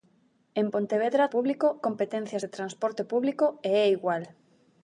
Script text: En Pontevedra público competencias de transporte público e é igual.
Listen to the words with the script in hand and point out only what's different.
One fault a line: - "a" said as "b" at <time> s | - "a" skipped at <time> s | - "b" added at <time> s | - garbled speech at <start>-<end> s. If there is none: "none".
none